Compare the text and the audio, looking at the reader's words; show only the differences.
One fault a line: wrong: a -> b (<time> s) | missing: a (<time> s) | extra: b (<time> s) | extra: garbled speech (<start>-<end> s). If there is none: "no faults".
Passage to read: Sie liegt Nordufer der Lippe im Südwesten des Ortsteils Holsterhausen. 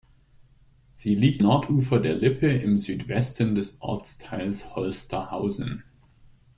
no faults